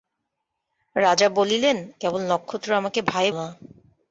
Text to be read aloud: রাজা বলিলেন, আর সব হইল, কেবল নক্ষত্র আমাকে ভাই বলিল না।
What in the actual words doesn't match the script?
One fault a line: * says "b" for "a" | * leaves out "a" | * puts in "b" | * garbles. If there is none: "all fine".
* leaves out "আর সব হইল"
* leaves out "বলিল"